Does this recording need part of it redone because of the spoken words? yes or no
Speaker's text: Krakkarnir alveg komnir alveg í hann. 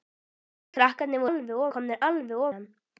no